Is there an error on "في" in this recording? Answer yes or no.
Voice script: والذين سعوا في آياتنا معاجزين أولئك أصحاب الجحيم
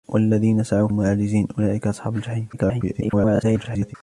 yes